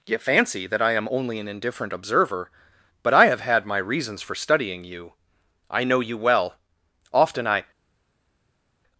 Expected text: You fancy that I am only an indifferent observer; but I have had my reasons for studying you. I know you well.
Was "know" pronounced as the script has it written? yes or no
yes